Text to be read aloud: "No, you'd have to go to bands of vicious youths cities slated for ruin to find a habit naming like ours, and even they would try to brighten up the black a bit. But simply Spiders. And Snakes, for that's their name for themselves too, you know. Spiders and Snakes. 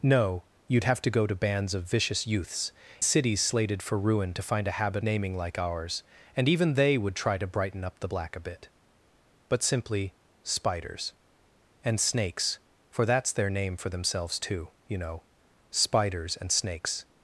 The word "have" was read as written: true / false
true